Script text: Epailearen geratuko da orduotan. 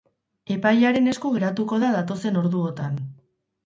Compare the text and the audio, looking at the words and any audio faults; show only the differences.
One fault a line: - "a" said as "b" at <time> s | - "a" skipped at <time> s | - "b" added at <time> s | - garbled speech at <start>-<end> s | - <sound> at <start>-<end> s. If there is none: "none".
- "esku" added at 1.1 s
- "datozen" added at 2.0 s